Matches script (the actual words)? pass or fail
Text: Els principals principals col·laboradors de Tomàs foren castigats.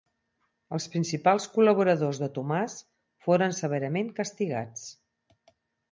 fail